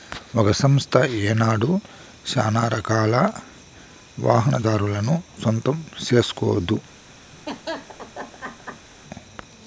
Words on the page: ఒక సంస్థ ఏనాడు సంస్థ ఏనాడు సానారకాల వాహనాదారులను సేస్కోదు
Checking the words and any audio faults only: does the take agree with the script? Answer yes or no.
no